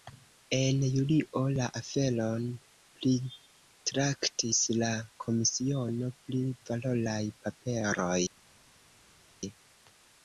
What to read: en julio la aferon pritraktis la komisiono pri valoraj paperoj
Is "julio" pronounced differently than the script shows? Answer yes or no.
no